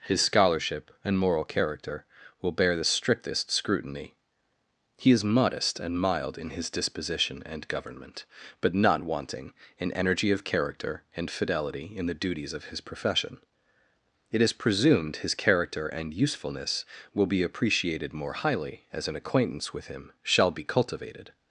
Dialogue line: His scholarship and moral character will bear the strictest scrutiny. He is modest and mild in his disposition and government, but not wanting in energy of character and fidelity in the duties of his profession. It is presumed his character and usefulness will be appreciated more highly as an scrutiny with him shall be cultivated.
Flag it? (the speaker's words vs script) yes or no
yes